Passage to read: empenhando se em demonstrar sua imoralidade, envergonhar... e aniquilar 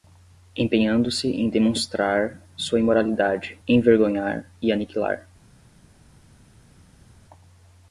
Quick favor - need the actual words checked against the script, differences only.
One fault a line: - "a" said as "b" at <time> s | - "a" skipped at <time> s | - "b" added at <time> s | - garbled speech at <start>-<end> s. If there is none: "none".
none